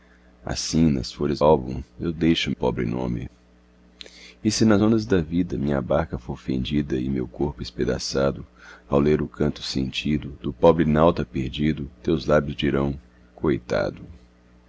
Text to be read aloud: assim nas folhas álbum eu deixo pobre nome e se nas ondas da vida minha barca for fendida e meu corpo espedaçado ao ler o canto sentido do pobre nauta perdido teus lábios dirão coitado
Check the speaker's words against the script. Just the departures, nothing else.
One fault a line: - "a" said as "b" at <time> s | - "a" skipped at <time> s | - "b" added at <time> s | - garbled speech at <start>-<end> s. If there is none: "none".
none